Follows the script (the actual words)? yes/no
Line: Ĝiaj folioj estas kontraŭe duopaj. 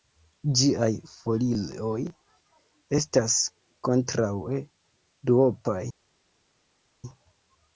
yes